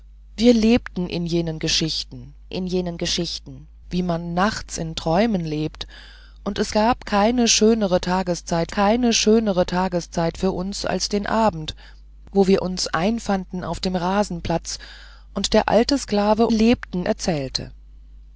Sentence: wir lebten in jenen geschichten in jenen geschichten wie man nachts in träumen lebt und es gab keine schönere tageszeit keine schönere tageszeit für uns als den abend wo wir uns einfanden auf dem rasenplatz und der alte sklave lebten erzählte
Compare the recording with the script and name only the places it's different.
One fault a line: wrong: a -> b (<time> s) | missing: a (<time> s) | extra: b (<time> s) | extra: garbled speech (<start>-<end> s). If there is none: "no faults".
no faults